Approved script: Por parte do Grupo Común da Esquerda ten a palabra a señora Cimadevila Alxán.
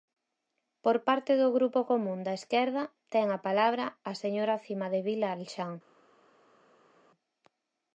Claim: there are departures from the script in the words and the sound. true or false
false